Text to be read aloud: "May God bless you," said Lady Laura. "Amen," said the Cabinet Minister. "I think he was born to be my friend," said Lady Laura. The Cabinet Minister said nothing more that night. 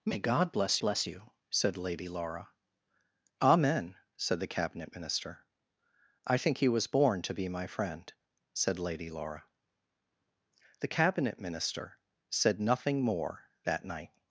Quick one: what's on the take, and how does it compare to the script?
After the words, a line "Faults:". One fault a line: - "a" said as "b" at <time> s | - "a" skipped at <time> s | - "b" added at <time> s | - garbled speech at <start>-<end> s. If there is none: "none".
"May God bless bless you," said Lady Laura. "Amen," said the Cabinet Minister. "I think he was born to be my friend," said Lady Laura. The Cabinet Minister said nothing more that night.
Faults:
- "bless" added at 0.8 s